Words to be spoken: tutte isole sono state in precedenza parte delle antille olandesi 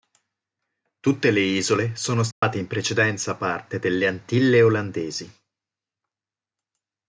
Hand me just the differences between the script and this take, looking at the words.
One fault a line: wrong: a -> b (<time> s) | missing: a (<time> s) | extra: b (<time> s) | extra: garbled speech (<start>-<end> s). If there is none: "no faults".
extra: le (1.3 s)